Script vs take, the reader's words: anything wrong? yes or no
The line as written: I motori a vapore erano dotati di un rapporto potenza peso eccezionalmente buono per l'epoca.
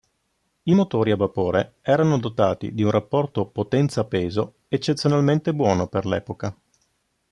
no